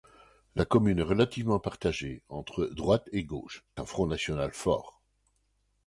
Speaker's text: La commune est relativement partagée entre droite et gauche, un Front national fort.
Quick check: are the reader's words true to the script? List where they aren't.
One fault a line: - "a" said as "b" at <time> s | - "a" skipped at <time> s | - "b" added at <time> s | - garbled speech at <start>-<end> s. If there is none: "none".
none